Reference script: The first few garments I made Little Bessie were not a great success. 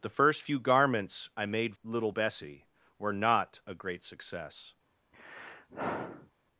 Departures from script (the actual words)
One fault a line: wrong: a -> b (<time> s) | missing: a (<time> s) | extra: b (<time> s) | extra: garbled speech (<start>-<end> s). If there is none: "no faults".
no faults